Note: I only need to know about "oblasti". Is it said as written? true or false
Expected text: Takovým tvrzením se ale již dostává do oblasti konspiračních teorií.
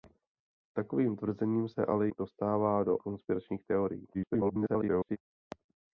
false